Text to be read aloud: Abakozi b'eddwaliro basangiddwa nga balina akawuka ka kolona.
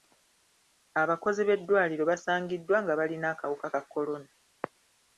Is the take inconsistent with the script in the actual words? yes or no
no